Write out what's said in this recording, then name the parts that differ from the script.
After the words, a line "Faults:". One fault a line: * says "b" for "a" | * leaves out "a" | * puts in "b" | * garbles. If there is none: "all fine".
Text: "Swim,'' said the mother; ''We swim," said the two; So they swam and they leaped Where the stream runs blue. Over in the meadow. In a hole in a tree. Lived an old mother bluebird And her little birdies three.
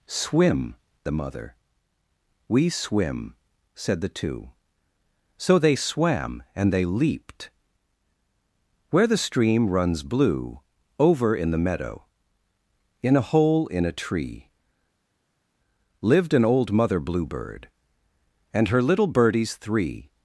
"Swim,'' the mother; ''We swim," said the two; So they swam and they leaped Where the stream runs blue. Over in the meadow. In a hole in a tree. Lived an old mother bluebird And her little birdies three.
Faults:
* leaves out "said"